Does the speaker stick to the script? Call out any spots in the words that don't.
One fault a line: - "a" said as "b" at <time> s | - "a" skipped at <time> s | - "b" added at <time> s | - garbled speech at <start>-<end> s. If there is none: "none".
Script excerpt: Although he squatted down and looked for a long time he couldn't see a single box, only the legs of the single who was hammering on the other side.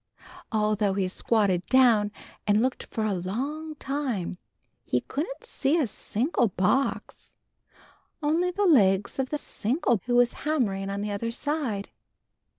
none